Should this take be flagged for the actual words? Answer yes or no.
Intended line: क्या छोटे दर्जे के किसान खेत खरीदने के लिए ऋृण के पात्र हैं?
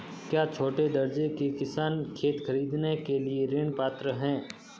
yes